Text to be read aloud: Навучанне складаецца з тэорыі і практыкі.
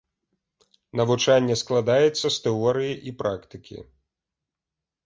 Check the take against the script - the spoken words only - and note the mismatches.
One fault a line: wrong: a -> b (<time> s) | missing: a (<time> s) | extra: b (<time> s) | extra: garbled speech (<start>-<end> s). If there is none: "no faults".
no faults